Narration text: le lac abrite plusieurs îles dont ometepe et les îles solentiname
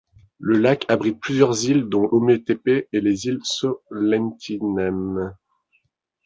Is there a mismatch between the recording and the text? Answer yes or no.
no